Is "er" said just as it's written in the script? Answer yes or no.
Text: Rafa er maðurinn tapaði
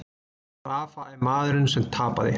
yes